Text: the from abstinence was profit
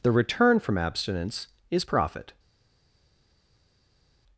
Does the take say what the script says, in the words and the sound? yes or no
no